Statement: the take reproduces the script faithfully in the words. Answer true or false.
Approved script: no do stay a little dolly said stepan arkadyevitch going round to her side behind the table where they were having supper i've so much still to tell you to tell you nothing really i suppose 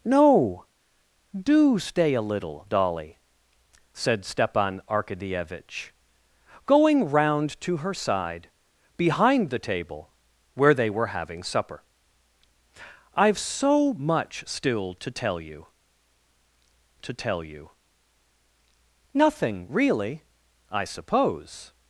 true